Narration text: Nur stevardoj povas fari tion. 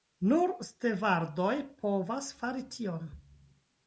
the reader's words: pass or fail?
pass